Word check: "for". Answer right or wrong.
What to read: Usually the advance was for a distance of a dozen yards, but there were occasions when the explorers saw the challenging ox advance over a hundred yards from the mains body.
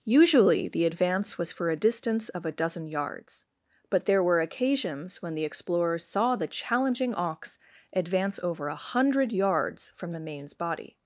right